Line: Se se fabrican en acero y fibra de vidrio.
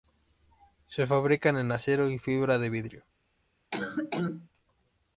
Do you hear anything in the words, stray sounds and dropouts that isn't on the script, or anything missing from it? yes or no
yes